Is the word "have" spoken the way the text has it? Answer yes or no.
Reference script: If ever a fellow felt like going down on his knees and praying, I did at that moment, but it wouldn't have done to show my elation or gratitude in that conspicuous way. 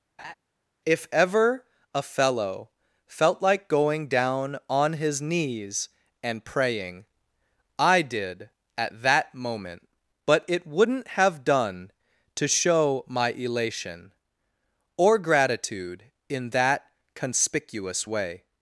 yes